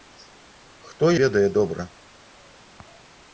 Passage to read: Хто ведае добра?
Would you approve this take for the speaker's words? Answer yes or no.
yes